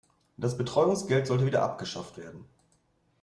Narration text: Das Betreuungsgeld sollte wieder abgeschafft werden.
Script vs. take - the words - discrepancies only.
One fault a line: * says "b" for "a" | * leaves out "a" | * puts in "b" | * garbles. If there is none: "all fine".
all fine